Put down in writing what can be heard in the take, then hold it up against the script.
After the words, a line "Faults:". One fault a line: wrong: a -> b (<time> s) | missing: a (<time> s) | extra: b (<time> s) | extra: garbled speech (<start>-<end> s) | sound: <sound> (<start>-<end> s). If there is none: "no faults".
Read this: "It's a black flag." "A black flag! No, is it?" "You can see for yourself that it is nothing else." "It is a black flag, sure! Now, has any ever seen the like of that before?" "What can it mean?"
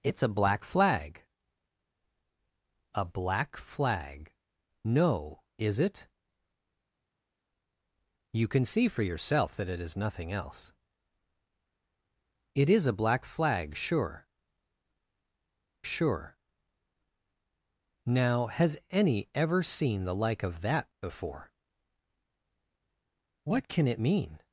"It's a black flag." "A black flag! No, is it?" "You can see for yourself that it is nothing else." "It is a black flag, sure sure! Now, has any ever seen the like of that before?" "What can it mean?"
Faults:
extra: sure (15.8 s)